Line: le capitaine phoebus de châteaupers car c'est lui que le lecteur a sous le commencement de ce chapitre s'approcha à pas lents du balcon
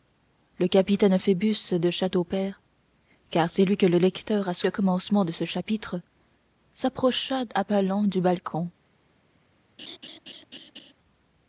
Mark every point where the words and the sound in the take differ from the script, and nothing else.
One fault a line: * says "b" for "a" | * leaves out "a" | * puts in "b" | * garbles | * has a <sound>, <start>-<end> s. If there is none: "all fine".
* has a laugh, 9.8-10.9 s